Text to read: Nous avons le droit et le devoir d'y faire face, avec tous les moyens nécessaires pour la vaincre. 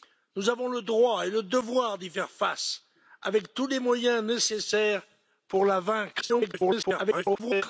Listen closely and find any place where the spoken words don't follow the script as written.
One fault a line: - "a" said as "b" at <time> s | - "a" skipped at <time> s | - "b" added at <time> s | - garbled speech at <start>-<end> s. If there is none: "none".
- garbled speech at 6.2-7.6 s